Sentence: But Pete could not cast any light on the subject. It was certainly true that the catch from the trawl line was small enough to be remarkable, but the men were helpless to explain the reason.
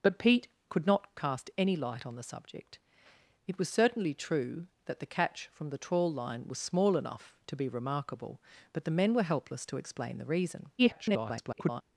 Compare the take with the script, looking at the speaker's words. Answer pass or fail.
fail